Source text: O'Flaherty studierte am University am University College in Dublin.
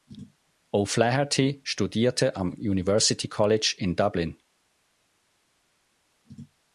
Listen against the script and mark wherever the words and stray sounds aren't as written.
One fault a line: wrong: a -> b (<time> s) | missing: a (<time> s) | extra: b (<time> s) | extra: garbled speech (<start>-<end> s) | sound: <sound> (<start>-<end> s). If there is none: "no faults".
missing: am University (3.3 s)